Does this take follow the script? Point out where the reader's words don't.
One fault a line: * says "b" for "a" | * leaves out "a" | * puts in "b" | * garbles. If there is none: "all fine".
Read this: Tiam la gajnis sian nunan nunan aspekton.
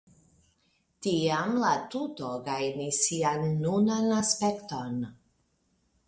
* puts in "tuto"
* leaves out "nunan"